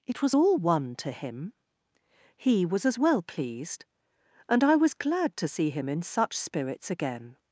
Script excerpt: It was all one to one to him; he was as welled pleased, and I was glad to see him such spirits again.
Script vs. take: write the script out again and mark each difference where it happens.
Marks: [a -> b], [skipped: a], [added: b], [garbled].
It was all one to [skipped: one to] him; he was as [welled -> well] pleased, and I was glad to see him [added: in] such spirits again.